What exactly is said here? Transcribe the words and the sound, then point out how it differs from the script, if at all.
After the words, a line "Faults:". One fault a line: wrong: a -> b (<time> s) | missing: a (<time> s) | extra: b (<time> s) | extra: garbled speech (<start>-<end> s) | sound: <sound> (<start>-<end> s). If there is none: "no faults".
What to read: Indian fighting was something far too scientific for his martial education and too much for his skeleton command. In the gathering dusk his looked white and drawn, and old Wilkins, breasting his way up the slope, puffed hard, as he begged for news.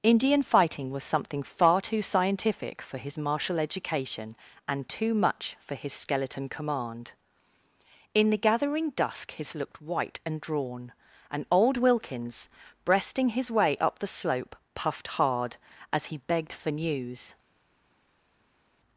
Indian fighting was something far too scientific for his martial education and too much for his skeleton command. In the gathering dusk his looked white and drawn, and old Wilkins, breasting his way up the slope, puffed hard, as he begged for news.
Faults:
no faults